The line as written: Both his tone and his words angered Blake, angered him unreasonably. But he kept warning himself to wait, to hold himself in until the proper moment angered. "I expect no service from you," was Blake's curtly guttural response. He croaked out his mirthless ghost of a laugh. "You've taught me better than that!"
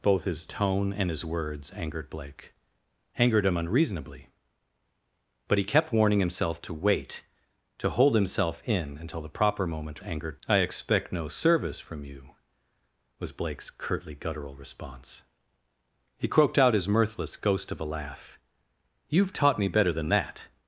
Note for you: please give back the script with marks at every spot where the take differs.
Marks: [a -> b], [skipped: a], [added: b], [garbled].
Both his tone and his words angered Blake, angered him unreasonably. But he kept warning himself to wait, to hold himself in until the proper moment angered. "I expect no service from you," was Blake's curtly guttural response. He croaked out his mirthless ghost of a laugh. "You've taught me better than that!"